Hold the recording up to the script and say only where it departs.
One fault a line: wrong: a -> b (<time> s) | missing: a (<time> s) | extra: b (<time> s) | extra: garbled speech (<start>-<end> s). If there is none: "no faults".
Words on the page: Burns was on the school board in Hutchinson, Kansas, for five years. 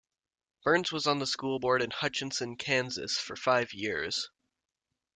no faults